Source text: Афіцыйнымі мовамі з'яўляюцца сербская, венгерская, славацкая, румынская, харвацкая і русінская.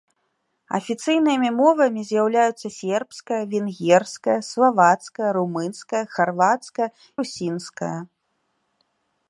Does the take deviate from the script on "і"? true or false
true